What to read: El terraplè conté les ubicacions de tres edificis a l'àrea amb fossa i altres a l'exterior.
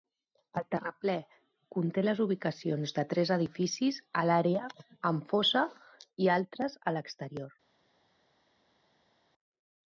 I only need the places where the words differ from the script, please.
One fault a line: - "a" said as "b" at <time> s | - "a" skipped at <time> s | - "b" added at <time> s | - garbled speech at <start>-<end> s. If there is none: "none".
none